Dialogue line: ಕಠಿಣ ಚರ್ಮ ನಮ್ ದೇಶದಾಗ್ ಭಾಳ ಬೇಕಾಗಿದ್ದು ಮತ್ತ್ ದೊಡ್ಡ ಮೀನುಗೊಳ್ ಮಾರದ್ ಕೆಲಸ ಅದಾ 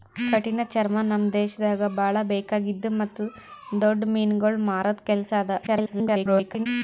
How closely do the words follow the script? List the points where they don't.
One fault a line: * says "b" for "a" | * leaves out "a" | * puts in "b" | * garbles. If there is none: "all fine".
* garbles